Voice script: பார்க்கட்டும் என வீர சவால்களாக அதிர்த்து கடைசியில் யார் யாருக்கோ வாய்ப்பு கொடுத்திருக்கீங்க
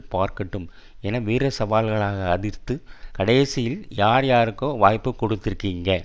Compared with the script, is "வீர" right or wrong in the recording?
right